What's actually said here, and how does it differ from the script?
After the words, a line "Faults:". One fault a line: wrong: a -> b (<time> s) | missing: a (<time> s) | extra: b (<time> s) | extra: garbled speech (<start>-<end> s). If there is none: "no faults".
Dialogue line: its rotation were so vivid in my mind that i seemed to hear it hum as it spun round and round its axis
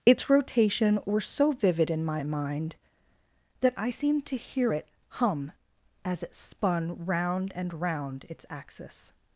its rotation were so vivid in my mind that i seemed to hear it hum as it spun round and round its axis
Faults:
no faults